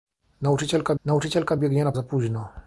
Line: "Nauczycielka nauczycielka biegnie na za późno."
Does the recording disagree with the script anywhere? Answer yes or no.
no